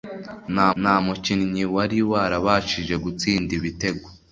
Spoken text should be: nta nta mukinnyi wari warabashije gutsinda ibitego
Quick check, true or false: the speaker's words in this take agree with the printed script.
true